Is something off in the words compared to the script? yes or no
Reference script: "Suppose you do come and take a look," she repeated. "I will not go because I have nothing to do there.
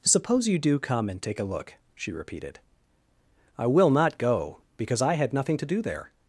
yes